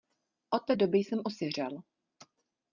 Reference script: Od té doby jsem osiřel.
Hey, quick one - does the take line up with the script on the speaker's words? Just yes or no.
yes